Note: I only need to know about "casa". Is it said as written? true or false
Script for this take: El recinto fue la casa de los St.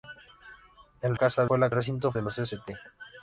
false